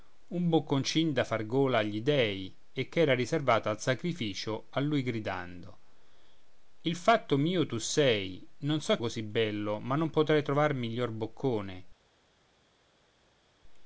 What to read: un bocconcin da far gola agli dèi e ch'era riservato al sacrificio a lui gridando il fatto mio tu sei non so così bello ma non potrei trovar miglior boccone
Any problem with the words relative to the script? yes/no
no